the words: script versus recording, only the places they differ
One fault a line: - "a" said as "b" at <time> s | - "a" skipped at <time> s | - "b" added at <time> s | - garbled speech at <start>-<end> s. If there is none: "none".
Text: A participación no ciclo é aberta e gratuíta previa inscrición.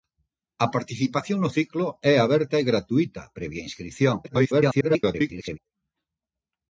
- garbled speech at 4.2-5.6 s